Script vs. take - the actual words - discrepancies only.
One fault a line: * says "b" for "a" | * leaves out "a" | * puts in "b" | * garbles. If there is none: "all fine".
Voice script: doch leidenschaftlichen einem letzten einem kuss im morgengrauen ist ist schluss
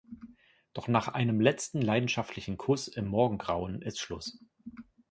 * says "nach" for "leidenschaftlichen"
* says "leidenschaftlichen" for "einem"
* leaves out "ist"